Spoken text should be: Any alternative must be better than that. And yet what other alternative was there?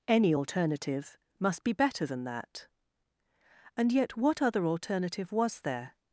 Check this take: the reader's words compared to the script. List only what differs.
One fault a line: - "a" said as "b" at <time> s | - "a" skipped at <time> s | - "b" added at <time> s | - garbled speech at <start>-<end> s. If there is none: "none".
none